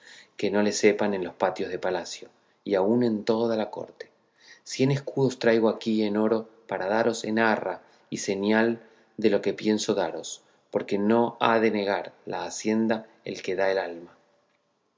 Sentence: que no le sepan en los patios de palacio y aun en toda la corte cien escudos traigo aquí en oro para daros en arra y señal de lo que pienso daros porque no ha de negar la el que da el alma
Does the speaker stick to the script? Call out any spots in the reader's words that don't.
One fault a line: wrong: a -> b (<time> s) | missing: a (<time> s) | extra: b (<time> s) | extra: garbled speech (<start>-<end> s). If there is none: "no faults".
extra: hacienda (12.4 s)